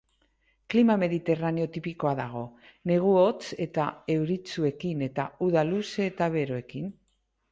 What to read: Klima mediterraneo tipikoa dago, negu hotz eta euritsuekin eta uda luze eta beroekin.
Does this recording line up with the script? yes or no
yes